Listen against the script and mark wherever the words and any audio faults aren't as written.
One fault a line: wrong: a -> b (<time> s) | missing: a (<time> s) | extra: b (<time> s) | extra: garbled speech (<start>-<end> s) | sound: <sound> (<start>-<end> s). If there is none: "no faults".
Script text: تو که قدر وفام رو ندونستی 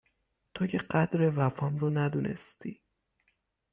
no faults